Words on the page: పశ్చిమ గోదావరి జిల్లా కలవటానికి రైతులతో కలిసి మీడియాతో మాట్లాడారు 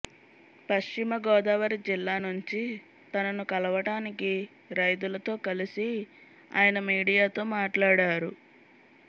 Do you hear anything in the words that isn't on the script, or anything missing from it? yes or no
yes